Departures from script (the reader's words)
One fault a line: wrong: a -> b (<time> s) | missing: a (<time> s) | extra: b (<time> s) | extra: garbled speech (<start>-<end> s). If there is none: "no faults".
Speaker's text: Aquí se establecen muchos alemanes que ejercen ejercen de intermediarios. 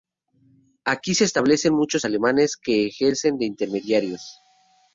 missing: ejercen (3.4 s)